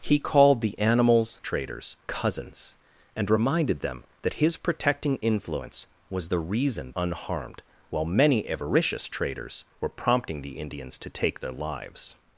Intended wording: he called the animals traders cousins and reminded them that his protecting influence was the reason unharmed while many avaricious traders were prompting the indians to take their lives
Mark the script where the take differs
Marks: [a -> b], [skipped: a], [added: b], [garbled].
he called the animals traders cousins and reminded them that his protecting influence was the reason unharmed while many avaricious traders were prompting the indians to take their lives